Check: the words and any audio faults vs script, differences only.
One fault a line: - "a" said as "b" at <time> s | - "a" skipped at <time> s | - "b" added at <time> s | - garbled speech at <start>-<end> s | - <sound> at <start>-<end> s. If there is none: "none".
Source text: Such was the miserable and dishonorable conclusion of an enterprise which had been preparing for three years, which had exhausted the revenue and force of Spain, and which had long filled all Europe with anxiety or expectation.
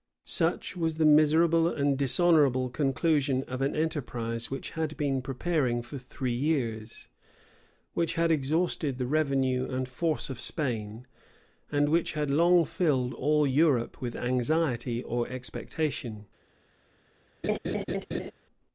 - laugh at 17.4-18.3 s